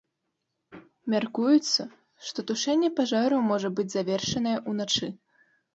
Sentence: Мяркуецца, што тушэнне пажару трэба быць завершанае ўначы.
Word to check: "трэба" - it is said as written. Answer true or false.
false